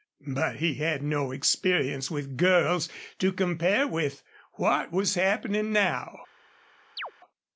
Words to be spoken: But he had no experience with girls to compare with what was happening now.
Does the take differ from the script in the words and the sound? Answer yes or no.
yes